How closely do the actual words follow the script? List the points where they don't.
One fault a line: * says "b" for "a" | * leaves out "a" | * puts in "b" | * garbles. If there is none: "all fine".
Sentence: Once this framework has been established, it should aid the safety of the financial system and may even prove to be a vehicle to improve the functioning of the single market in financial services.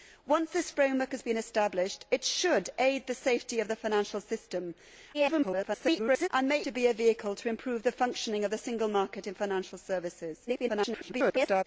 * garbles
* leaves out "even prove"
* garbles